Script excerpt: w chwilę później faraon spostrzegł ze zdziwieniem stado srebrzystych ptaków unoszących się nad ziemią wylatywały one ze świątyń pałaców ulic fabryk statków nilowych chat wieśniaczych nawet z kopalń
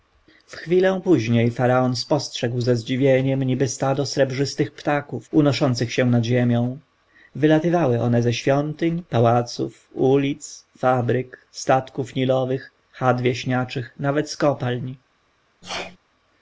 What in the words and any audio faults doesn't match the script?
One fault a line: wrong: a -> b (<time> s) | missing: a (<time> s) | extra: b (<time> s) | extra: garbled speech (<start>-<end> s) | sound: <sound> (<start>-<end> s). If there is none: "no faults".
extra: niby (3.4 s)
sound: sneeze (15.6-16.0 s)